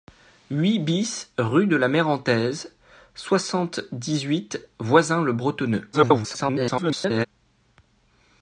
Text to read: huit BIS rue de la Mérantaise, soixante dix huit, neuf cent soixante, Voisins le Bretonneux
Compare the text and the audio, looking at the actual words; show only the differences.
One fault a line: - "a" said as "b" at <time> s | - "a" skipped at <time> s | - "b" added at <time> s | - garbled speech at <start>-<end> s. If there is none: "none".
- "neuf cent soixante" skipped at 4.6 s
- garbled speech at 5.9-7.3 s